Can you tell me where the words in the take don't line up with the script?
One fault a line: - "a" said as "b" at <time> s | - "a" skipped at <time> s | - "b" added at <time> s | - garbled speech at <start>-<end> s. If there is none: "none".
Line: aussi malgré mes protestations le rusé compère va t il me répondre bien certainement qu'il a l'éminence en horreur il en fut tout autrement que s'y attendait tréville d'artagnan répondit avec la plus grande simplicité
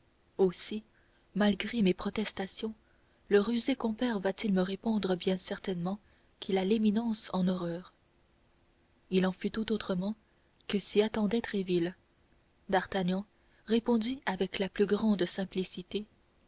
none